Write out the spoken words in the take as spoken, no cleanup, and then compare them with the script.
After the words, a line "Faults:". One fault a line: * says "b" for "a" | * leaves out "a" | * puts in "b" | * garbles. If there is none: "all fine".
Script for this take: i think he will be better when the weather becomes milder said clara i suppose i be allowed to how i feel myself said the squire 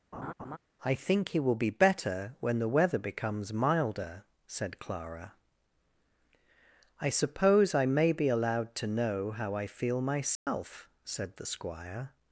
i think he will be better when the weather becomes milder said clara i suppose i may be allowed to know how i feel myself said the squire
Faults:
* puts in "may"
* puts in "know"